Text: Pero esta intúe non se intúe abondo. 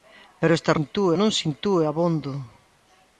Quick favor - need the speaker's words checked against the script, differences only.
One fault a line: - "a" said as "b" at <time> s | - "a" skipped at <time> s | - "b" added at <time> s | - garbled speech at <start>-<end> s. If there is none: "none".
none